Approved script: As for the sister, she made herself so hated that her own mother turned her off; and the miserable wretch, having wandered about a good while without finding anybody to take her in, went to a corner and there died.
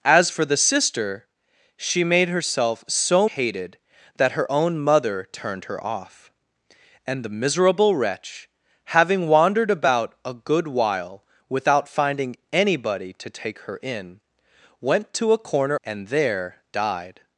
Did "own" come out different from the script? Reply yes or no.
no